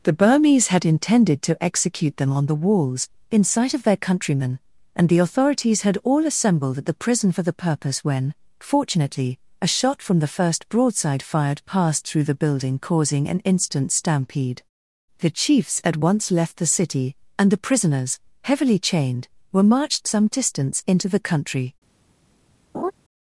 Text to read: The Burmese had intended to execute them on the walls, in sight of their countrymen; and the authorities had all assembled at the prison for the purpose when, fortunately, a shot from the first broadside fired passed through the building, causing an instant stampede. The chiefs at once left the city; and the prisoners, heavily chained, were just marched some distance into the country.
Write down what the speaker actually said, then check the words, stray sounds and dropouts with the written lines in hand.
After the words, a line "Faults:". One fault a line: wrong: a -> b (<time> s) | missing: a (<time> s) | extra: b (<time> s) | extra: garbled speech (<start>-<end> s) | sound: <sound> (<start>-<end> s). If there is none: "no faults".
The Burmese had intended to execute them on the walls, in sight of their countrymen; and the authorities had all assembled at the prison for the purpose when, fortunately, a shot from the first broadside fired passed through the building, causing an instant stampede. The chiefs at once left the city; and the prisoners, heavily chained, were marched some distance into the country.
Faults:
missing: just (19.6 s)
sound: laugh (22.7-22.9 s)